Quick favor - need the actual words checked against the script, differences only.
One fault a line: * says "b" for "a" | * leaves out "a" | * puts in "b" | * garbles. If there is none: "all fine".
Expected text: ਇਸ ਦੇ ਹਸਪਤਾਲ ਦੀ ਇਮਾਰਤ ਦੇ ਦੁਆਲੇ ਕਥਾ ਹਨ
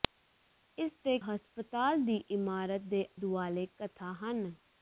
all fine